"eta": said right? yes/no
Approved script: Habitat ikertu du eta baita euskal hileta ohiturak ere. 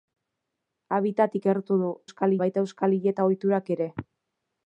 no